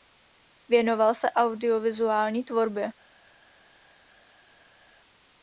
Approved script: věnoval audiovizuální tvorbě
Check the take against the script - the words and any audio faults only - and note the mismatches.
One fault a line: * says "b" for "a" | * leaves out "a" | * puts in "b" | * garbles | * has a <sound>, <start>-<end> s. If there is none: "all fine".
* puts in "se"